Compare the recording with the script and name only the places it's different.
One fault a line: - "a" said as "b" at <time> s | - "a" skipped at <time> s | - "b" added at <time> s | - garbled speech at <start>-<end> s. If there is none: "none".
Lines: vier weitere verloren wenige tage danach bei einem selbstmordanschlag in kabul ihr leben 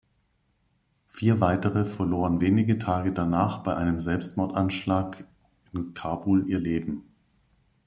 none